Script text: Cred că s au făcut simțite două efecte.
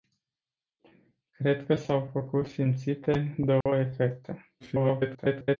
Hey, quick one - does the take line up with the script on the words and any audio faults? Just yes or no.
no